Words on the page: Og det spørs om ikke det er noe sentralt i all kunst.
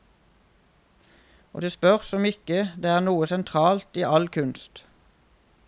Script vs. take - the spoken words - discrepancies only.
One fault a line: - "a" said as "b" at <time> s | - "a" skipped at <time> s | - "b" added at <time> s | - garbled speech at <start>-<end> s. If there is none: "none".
none